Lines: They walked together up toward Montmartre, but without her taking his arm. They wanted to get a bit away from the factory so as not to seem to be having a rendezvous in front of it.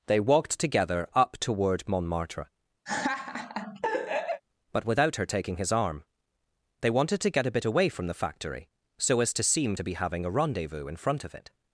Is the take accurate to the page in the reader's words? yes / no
no